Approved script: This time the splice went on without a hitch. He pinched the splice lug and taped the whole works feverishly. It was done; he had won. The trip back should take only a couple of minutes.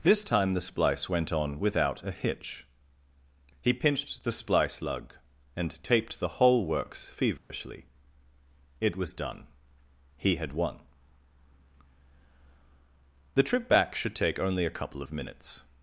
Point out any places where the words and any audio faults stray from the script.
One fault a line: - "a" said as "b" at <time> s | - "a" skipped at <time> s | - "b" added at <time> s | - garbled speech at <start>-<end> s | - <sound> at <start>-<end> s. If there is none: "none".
- dropout at 7.4-7.5 s